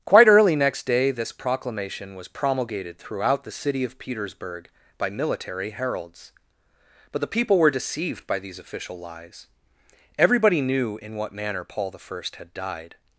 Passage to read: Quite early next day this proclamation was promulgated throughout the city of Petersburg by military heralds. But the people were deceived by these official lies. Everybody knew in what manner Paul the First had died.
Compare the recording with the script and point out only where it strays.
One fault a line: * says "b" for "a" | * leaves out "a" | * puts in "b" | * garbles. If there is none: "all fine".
all fine